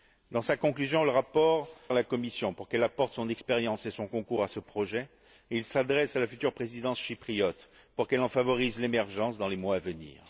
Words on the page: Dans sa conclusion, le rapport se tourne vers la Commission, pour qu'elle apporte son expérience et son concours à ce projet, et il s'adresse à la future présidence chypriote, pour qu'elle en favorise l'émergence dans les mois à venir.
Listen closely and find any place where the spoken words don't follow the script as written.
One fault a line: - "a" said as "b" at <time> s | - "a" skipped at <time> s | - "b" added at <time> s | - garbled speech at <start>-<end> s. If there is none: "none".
- "se tourne vers" skipped at 1.7 s